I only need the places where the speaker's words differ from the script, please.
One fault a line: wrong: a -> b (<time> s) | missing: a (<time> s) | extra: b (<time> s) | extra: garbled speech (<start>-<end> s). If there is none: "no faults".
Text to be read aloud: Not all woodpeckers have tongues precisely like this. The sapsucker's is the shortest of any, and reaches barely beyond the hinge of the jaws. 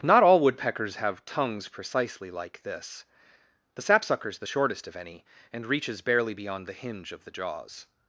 missing: is (4.4 s)